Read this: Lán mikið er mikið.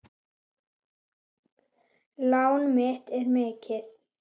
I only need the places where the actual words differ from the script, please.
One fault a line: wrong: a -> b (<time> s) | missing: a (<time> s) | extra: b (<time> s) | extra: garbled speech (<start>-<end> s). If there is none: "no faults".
wrong: mikið -> mitt (2.8 s)